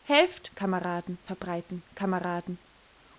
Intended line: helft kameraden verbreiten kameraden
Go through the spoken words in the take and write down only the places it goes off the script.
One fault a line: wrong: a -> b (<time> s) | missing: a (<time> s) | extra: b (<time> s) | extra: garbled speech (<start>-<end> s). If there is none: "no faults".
no faults